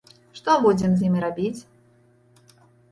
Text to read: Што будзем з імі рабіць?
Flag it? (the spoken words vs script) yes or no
no